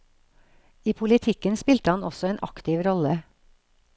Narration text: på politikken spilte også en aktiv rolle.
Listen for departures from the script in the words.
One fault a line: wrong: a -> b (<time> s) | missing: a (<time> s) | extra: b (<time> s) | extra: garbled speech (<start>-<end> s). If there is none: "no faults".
wrong: på -> I (0.8 s)
extra: han (2.0 s)